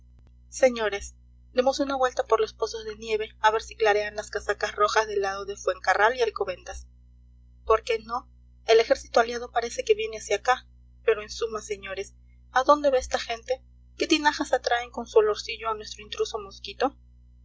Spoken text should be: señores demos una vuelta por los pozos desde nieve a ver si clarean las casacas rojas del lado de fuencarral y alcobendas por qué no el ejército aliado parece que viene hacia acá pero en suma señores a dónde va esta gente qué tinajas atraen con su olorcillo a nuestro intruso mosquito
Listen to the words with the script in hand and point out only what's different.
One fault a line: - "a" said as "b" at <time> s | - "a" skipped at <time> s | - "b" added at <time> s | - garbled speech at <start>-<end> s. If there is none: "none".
- "desde" said as "de" at 2.9 s